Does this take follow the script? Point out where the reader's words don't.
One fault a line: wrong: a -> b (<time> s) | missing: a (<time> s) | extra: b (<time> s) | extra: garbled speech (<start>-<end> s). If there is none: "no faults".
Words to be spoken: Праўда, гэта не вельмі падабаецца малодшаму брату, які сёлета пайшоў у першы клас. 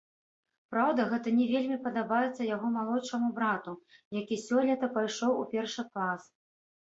extra: яго (2.5 s)